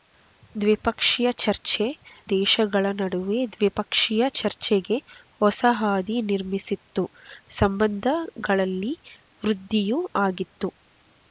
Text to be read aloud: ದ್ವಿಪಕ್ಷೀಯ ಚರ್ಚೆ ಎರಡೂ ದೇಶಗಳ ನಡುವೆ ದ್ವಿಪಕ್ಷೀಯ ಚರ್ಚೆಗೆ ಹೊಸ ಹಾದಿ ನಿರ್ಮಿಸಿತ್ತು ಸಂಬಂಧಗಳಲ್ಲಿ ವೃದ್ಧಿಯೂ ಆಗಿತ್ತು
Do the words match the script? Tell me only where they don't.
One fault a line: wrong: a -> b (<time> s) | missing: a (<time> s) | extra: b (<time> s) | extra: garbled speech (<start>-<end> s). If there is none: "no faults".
missing: ಎರಡೂ (1.9 s)